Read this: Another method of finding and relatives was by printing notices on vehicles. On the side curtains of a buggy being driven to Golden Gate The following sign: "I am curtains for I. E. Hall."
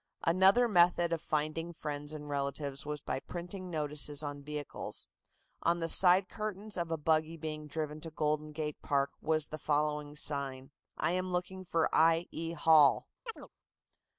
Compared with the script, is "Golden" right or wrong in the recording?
right